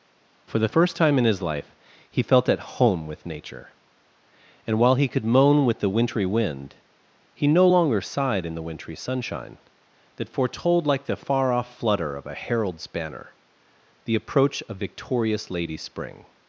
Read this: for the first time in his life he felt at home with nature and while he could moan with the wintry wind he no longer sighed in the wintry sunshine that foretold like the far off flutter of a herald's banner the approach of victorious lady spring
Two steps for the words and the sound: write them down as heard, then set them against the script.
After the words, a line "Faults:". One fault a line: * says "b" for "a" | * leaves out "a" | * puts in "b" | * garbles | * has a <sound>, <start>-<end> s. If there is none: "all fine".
for the first time in his life he felt at home with nature and while he could moan with the wintry wind he no longer sighed in the wintry sunshine that foretold like the far off flutter of a herald's banner the approach of victorious lady spring
Faults:
all fine